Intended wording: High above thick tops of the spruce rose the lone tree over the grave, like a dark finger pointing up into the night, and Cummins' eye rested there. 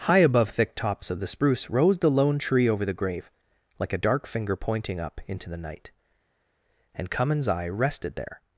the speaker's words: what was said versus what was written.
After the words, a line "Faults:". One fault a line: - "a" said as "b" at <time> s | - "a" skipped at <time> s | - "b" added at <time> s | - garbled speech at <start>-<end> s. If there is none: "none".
High above thick tops of the spruce rose the lone tree over the grave, like a dark finger pointing up into the night, and Cummins' eye rested there.
Faults:
none